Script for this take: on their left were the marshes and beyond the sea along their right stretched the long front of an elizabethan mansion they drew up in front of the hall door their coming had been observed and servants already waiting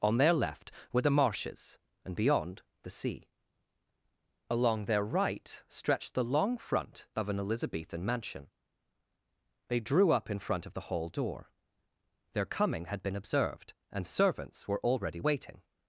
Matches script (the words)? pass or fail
fail